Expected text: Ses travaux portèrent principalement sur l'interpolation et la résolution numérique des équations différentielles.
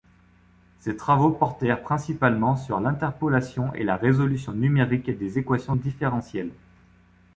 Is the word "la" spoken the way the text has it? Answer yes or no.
yes